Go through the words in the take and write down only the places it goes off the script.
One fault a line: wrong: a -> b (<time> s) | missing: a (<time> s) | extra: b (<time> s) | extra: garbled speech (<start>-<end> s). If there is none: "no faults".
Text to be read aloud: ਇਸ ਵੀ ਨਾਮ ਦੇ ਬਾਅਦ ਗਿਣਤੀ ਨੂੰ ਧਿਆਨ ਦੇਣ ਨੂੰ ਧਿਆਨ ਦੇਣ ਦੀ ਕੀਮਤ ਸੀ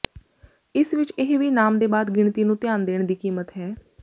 extra: ਵਿਚ ਇਹ (0.9 s)
missing: ਨੂੰ ਧਿਆਨ ਦੇਣ (3.0 s)
wrong: ਸੀ -> ਹੈ (3.6 s)